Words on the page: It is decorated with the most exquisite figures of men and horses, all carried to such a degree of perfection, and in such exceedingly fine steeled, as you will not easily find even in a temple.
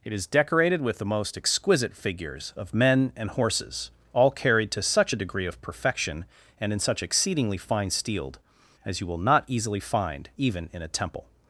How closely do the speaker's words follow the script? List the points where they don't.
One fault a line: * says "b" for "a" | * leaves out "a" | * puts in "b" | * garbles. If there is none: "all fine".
all fine